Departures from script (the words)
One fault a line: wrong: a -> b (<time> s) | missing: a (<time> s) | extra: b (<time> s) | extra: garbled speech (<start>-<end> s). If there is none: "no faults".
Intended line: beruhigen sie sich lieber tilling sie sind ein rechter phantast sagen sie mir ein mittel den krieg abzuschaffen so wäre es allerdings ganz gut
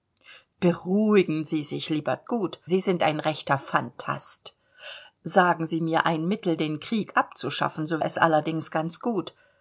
wrong: tilling -> gut (2.2 s)
missing: wäre (8.0 s)